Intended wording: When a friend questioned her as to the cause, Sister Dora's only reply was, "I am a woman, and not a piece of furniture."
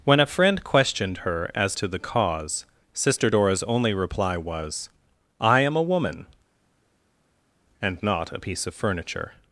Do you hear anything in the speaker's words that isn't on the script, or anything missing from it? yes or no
no